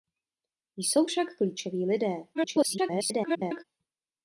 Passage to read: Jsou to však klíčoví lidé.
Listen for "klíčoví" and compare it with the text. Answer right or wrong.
right